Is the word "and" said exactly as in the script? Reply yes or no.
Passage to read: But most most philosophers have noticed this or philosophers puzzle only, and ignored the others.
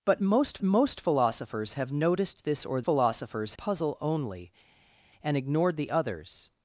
yes